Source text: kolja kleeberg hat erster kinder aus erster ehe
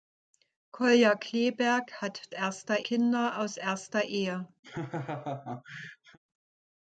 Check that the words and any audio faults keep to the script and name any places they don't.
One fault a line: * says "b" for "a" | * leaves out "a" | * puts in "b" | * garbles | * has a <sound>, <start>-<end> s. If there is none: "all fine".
* has a laugh, 4.6-6.2 s